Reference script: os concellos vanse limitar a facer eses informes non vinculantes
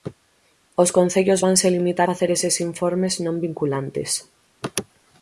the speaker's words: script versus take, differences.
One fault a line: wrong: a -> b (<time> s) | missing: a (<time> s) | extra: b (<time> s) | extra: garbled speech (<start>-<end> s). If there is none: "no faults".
missing: a (2.1 s)